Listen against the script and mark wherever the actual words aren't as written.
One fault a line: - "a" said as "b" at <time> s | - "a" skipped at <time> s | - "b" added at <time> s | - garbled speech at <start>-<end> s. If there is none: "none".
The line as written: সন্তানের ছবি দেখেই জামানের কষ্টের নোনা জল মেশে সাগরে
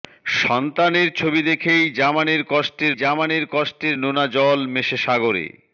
- "জামানের কষ্টের" added at 2.9 s